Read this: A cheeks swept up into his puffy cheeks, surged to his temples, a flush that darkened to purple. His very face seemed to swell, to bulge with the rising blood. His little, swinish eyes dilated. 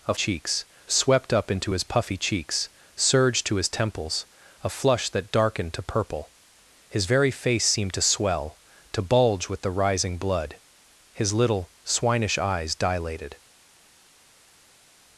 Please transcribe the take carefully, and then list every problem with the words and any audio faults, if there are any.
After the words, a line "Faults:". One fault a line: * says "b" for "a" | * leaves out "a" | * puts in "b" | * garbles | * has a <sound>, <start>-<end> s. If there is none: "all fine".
A cheeks swept up into his puffy cheeks, surged to his temples, a flush that darkened to purple. His very face seemed to swell, to bulge with the rising blood. His little, swinish eyes dilated.
Faults:
all fine